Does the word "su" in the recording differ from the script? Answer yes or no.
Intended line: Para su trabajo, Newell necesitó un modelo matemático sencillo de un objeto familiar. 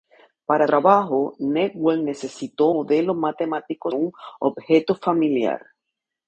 yes